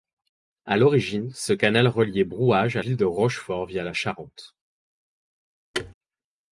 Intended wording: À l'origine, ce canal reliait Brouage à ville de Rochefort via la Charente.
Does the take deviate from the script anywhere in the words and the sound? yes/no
yes